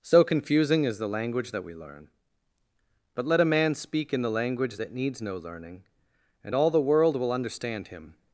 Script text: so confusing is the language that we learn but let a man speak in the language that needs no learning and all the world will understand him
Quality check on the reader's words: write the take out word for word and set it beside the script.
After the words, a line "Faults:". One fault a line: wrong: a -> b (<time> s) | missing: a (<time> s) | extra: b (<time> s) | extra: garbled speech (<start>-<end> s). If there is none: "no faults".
so confusing is the language that we learn but let a man speak in the language that needs no learning and all the world will understand him
Faults:
no faults